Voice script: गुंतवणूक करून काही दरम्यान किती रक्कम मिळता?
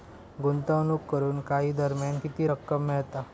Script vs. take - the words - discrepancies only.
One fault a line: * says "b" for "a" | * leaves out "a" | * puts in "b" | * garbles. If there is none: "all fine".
all fine